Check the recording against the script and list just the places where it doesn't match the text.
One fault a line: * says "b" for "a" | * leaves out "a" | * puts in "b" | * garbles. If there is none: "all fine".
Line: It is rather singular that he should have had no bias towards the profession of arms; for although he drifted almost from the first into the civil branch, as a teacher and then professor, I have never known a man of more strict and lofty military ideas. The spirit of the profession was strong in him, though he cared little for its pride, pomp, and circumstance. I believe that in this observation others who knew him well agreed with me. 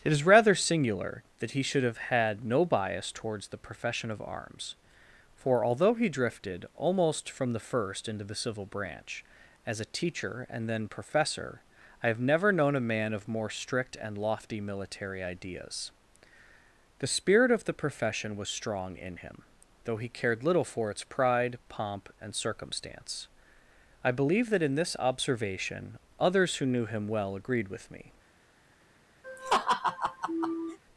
all fine